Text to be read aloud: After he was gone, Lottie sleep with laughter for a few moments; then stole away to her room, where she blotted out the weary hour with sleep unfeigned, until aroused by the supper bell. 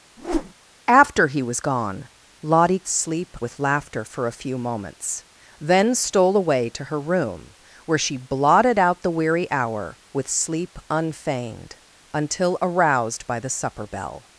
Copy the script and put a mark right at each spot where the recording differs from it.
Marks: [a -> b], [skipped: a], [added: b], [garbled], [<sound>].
[whoosh] After he was gone, Lottie sleep with laughter for a few moments; then stole away to her room, where she blotted out the weary hour with sleep unfeigned, until aroused by the supper bell.